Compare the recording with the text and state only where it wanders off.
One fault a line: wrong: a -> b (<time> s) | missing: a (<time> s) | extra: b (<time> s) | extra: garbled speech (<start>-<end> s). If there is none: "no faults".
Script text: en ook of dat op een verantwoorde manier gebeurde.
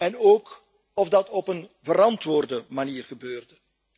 no faults